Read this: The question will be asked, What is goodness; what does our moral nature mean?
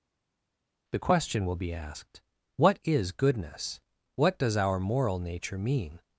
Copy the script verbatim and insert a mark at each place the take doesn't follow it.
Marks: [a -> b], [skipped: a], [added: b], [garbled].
The question will be asked, What is goodness; what does our moral nature mean?